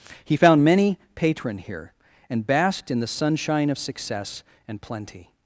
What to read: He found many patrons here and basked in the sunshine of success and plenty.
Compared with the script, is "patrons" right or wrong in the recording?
wrong